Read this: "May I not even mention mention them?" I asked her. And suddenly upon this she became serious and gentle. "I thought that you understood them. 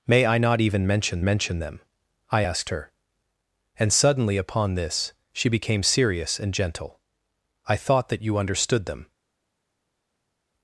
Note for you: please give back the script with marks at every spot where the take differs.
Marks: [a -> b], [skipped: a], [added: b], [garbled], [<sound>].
"May I not even mention mention them?" I asked her. And suddenly upon this she became serious and gentle. "I thought that you understood them.